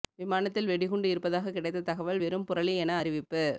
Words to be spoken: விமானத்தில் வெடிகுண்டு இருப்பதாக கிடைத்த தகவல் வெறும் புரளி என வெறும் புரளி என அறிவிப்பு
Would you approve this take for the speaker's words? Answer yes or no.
no